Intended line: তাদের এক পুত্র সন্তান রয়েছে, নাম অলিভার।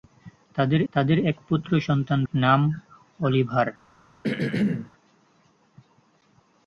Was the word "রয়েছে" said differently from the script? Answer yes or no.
yes